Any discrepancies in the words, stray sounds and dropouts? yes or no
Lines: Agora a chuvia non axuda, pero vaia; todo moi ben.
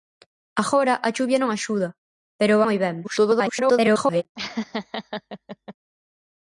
yes